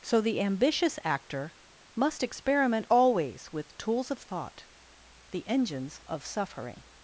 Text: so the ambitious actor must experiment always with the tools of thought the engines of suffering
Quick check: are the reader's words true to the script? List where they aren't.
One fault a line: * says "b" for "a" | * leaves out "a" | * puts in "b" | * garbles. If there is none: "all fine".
* leaves out "the"